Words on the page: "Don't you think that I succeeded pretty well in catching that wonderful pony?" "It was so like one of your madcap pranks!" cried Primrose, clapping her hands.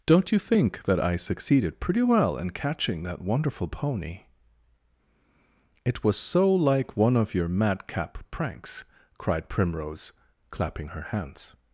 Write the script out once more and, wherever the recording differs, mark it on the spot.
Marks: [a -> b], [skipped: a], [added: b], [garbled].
"Don't you think that I succeeded pretty well in catching that wonderful pony?" "It was so like one of your madcap pranks!" cried Primrose, clapping her hands.